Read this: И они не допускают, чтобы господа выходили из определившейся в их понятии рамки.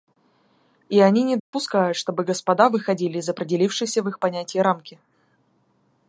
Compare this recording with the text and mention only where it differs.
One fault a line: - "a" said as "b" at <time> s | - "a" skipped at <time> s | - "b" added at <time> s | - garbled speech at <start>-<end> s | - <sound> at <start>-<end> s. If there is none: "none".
- dropout at 1.4-1.5 s